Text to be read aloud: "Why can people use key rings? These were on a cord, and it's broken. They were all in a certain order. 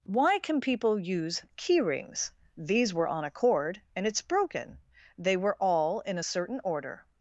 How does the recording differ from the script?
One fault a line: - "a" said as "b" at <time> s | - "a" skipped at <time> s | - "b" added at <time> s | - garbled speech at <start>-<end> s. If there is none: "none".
none